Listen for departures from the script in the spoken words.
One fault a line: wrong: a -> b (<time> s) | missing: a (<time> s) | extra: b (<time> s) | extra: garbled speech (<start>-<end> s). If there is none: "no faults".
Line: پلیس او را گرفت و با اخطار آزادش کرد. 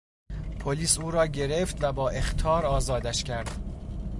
no faults